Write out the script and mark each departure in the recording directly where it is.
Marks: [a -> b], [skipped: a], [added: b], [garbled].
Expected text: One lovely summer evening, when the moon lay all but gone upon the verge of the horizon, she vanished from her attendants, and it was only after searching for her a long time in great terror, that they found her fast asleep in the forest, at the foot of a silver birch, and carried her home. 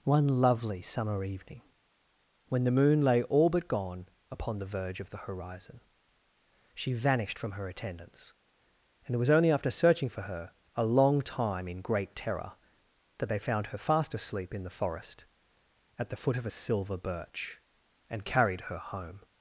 One lovely summer evening, when the moon lay all but gone upon the verge of the horizon, she vanished from her attendants, and it was only after searching for her a long time in great terror, that they found her fast asleep in the forest, at the foot of a silver birch, and carried her home.